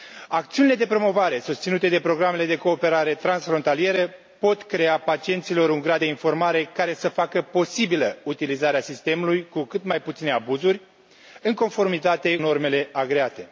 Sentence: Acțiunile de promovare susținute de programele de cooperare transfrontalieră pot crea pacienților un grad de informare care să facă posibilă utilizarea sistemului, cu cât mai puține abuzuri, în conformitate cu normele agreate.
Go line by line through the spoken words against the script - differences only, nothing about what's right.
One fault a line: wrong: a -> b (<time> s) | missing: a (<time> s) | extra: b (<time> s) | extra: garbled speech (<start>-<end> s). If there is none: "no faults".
missing: cu (12.4 s)